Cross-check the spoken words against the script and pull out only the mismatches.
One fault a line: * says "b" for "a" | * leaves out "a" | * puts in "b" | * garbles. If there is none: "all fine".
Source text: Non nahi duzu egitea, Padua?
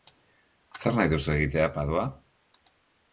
* says "Zer" for "Non"